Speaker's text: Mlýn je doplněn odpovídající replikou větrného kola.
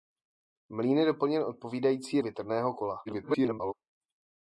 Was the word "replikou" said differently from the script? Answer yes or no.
yes